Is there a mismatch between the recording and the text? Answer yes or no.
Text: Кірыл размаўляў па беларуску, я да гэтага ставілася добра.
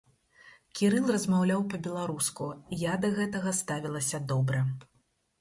no